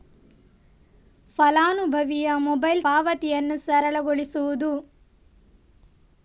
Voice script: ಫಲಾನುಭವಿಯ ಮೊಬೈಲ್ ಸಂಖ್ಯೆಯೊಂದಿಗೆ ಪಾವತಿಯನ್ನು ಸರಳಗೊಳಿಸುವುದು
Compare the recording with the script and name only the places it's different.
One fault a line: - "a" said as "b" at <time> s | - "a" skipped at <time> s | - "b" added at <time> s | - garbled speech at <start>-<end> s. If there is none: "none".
- "ಸಂಖ್ಯೆಯೊಂದಿಗೆ" skipped at 2.8 s